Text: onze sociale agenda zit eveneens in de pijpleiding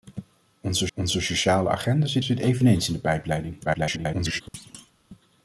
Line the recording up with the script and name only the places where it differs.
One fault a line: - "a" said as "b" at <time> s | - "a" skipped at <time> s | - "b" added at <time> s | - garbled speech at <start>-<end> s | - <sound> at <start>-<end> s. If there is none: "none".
- "onze" added at 0.9 s
- "zit" added at 2.2 s
- garbled speech at 3.6-4.4 s
- thud at 4.5-4.9 s